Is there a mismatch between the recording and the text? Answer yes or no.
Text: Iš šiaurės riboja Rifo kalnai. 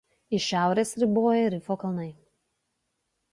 no